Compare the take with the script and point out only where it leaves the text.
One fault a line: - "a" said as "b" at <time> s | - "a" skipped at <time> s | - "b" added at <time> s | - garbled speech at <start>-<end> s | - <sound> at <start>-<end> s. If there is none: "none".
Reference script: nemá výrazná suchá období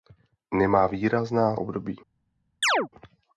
- "suchá" skipped at 1.6 s
- chirp at 2.6-2.9 s